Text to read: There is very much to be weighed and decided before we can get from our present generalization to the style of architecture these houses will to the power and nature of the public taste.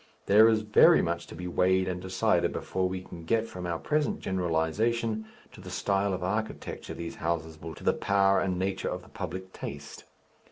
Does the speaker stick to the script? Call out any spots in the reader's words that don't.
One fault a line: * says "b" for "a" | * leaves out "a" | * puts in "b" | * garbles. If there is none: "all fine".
all fine